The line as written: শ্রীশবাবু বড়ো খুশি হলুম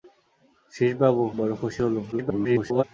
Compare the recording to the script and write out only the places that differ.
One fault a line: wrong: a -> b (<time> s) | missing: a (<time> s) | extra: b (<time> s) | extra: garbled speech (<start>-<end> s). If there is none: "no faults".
extra: garbled speech (2.1-2.8 s)